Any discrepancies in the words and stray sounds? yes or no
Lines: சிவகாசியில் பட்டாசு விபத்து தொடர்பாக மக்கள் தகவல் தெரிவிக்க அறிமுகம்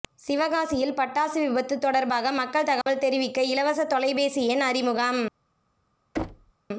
yes